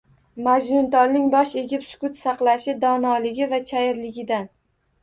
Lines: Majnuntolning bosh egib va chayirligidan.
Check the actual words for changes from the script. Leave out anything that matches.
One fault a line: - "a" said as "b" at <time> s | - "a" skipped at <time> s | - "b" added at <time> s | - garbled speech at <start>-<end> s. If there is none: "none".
- "sukut saqlashi donoligi" added at 1.9 s